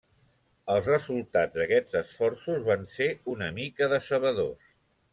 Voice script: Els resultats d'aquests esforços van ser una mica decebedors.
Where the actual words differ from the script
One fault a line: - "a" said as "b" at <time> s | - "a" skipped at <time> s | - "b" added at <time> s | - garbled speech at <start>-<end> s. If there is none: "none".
none